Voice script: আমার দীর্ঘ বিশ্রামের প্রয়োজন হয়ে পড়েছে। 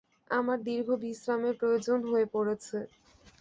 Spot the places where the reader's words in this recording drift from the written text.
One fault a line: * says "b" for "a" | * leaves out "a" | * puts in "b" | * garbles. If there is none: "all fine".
all fine